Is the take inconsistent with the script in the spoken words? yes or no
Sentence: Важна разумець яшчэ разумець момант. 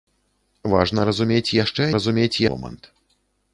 no